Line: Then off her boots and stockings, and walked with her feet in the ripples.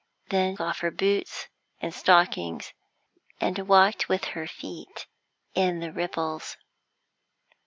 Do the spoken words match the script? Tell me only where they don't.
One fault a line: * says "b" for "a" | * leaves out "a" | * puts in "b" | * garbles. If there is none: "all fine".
all fine